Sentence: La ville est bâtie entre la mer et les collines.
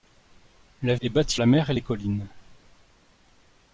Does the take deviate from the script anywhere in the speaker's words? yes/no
yes